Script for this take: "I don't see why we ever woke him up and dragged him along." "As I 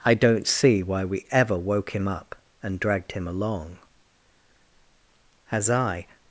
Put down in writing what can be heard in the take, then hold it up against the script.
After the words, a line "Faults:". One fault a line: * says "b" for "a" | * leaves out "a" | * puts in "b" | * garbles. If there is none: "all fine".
"I don't see why we ever woke him up and dragged him along." "As I
Faults:
all fine